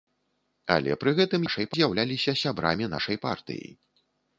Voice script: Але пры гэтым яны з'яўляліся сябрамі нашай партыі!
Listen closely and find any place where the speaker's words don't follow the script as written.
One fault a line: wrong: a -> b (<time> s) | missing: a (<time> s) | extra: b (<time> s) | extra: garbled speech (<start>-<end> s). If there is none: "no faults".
wrong: яны -> нашай (1.5 s)